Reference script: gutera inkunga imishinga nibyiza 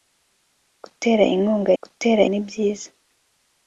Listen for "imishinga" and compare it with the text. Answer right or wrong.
wrong